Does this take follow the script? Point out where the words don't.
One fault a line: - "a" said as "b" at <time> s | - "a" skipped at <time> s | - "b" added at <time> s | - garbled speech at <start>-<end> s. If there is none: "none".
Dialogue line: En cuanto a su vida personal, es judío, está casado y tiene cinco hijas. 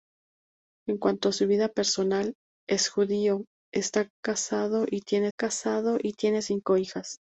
- "casado y tiene" added at 5.4 s